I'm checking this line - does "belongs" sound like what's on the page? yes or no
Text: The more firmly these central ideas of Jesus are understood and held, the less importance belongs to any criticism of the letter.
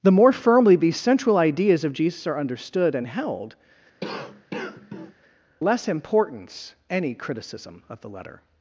no